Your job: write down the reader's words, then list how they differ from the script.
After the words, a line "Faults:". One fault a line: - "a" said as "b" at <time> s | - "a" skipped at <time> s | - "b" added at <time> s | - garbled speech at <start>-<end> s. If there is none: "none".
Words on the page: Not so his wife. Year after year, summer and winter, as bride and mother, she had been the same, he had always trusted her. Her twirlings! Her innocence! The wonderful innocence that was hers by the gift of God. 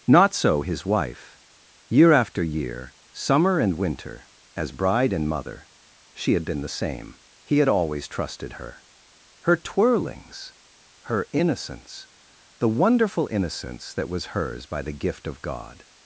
Not so his wife. Year after year, summer and winter, as bride and mother, she had been the same, he had always trusted her. Her twirlings! Her innocence! The wonderful innocence that was hers by the gift of God.
Faults:
none